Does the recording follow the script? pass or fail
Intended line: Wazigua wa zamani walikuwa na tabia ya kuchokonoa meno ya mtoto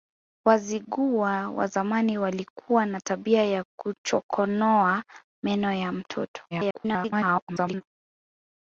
fail